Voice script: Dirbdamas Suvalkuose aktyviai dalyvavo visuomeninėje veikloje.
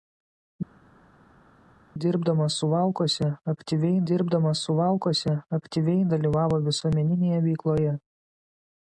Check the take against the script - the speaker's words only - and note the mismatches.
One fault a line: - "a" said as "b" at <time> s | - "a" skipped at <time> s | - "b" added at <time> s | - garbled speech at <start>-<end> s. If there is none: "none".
- "dirbdamas Suvalkuose aktyviai" added at 4.1 s